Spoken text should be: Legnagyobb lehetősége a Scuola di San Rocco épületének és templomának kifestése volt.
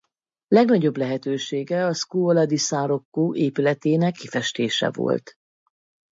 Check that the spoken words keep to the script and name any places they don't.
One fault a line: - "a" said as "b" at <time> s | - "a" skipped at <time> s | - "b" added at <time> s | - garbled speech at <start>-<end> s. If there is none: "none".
- "és templomának" skipped at 4.2 s